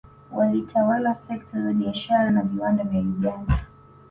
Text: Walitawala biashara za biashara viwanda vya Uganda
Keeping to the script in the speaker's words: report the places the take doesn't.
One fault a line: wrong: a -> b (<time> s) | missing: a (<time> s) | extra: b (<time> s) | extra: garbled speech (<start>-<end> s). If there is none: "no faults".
wrong: biashara -> sekta (1.1 s)
extra: na (2.3 s)